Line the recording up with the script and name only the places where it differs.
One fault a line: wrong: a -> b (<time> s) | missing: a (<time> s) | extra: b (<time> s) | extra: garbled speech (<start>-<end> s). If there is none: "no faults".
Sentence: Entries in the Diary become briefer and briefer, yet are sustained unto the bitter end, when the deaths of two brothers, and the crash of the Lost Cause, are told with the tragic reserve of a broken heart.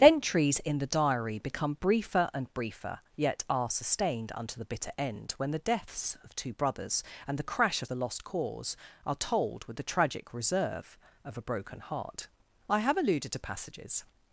extra: I have alluded to passages (12.7 s)